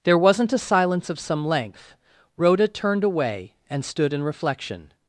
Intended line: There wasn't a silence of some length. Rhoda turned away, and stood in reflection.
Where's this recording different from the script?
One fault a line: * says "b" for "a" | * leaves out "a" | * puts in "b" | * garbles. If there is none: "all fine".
all fine